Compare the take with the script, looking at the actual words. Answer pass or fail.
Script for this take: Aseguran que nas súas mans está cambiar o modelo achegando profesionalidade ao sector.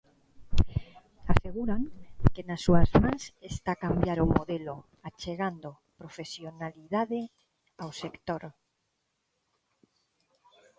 pass